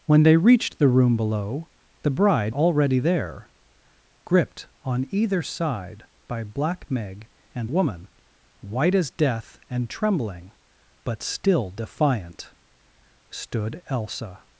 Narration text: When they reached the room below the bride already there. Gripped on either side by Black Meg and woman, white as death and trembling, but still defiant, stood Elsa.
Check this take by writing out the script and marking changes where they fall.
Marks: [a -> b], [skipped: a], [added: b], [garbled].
When they reached the room below the bride already there. Gripped on either side by Black Meg and woman, white as death and trembling, but still defiant, stood Elsa.